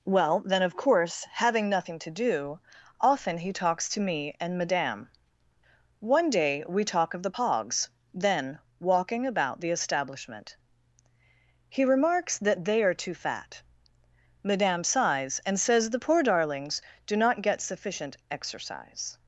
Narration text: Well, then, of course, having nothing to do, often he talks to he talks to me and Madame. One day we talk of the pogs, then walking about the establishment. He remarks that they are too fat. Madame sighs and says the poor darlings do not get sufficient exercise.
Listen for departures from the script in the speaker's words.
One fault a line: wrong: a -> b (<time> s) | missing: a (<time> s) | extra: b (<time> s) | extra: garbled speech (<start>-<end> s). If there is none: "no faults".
missing: he talks to (4.0 s)